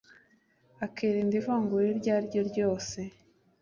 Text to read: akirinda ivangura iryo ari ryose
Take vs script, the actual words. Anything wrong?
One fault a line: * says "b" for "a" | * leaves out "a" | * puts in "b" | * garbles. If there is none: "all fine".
* puts in "ryo"